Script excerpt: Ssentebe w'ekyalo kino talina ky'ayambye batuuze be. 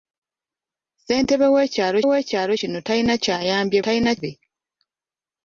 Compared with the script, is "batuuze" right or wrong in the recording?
wrong